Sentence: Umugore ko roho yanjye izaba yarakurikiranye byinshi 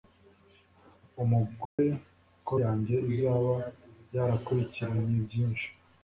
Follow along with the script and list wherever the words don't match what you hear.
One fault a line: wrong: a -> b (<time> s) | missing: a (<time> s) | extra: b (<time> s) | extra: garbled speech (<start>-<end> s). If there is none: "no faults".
missing: roho (2.5 s)